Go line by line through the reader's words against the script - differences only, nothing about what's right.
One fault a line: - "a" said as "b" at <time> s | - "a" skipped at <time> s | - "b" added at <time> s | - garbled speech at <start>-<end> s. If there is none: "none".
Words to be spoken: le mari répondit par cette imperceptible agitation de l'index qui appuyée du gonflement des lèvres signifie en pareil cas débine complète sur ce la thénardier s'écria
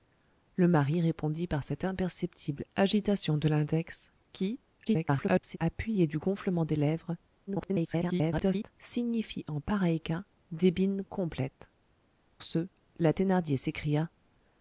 - garbled speech at 4.9-5.6 s
- garbled speech at 7.5-8.7 s
- "sur" skipped at 11.7 s